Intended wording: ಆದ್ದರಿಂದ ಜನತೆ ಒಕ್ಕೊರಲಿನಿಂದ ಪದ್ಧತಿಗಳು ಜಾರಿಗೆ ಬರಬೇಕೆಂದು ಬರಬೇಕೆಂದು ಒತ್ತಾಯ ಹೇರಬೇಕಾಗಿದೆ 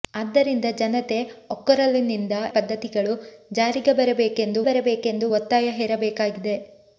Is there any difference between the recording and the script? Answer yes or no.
no